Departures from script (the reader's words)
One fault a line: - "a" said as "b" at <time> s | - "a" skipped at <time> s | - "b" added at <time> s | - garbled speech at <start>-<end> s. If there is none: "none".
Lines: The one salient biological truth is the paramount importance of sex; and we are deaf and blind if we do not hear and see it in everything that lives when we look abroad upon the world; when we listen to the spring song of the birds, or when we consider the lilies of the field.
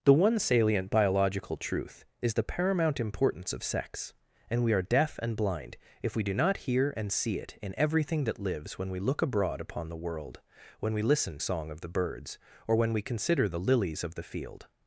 - "to the spring" skipped at 11.4 s